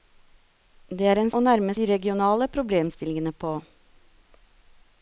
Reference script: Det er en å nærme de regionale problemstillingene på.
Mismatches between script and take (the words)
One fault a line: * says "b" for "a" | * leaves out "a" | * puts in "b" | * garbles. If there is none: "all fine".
all fine